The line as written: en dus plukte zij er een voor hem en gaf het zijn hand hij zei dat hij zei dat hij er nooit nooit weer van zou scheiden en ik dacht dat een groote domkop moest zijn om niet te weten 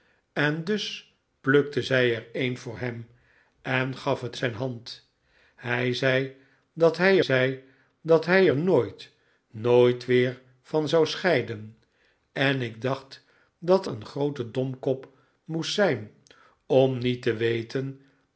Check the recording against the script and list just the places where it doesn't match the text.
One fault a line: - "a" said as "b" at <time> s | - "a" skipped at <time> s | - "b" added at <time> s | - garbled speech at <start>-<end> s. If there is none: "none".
none